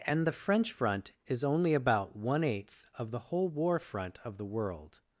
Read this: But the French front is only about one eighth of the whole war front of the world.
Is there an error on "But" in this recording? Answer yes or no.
yes